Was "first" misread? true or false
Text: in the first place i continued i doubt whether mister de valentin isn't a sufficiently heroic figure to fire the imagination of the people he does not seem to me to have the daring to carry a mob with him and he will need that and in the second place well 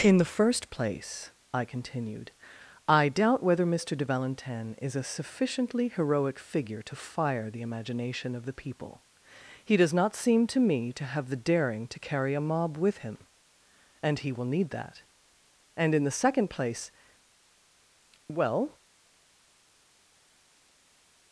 false